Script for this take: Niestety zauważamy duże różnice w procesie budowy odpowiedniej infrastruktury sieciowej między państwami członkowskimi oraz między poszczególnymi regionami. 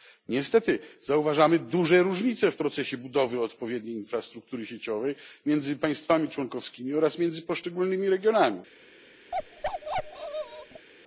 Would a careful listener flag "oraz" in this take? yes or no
no